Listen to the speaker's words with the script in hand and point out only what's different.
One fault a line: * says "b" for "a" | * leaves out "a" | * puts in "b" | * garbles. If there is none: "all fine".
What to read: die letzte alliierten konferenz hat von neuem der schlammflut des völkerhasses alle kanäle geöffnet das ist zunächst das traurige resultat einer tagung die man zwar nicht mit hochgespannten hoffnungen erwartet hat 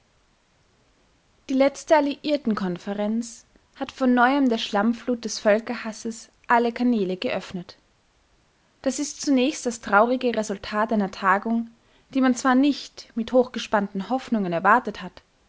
all fine